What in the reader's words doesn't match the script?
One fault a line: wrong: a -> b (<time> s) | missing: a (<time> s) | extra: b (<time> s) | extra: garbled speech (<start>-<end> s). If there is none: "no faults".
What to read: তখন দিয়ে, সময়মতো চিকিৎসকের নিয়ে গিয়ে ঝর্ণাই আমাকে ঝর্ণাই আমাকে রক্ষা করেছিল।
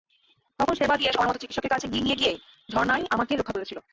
extra: সেবা (0.8 s)
extra: কাছে (1.7 s)
missing: ঝর্ণাই আমাকে (3.3 s)